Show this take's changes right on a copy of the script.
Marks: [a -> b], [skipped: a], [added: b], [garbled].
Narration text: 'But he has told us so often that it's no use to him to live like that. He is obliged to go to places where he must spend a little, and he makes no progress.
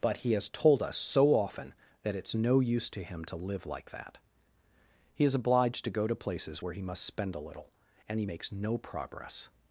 'But he has told us so often that it's no use to him to live like that. He is obliged to go to places where he must spend a little, and he makes no progress.